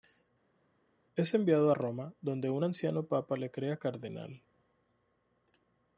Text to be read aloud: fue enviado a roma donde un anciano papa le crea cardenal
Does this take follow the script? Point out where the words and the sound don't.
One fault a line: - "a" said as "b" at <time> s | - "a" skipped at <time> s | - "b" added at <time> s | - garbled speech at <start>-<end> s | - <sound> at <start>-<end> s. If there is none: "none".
- "fue" said as "es" at 1.2 s